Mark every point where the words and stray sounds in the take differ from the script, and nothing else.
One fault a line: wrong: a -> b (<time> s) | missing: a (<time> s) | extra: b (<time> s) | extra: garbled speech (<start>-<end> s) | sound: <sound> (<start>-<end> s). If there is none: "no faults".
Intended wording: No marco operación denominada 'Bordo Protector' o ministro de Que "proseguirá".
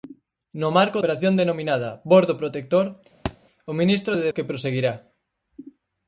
sound: thud (3.3-3.4 s)